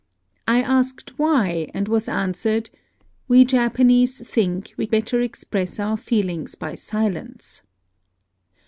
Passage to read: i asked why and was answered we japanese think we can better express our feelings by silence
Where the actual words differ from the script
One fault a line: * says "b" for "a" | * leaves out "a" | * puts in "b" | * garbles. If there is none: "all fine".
* leaves out "can"